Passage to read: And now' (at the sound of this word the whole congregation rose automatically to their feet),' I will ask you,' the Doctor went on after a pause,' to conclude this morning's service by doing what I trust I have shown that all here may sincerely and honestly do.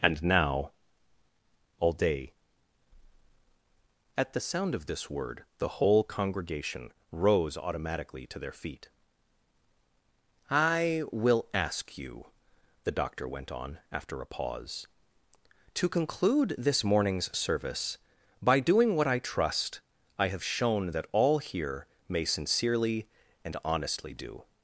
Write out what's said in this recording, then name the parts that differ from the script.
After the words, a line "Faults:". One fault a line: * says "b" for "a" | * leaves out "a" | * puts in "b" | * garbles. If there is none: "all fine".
And now' all day (at the sound of this word the whole congregation rose automatically to their feet),' I will ask you,' the Doctor went on after a pause,' to conclude this morning's service by doing what I trust I have shown that all here may sincerely and honestly do.
Faults:
* puts in "all day"